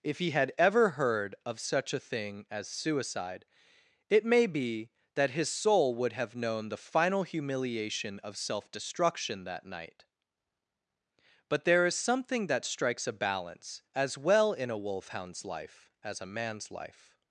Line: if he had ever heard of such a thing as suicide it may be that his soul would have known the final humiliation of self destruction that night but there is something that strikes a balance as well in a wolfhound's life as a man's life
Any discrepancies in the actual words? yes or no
no